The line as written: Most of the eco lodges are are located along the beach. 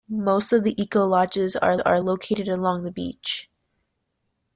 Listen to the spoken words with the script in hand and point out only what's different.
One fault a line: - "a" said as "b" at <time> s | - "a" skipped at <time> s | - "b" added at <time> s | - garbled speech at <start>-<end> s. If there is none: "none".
none